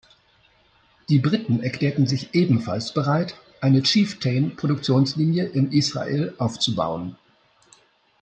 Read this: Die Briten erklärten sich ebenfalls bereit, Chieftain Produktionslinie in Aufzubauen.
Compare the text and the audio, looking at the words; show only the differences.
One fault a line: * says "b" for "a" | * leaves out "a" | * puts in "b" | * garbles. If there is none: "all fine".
* puts in "eine"
* puts in "Israel"